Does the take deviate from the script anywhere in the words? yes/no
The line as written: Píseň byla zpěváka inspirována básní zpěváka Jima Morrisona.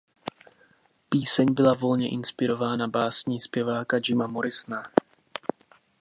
yes